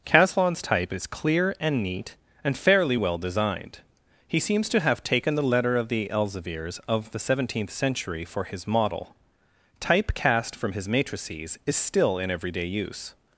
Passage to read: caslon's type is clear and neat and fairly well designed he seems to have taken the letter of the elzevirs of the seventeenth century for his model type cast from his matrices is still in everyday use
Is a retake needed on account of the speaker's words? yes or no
no